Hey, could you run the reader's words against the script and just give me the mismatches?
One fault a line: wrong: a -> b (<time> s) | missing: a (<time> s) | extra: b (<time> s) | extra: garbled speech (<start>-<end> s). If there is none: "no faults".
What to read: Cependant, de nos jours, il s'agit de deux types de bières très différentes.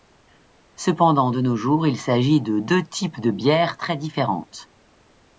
no faults